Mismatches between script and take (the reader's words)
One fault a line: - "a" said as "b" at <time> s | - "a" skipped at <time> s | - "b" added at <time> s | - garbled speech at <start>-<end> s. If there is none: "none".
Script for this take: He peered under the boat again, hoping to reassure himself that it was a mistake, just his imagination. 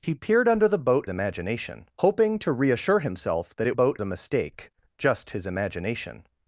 - "again" said as "imagination" at 1.1 s
- "was" said as "boat" at 3.7 s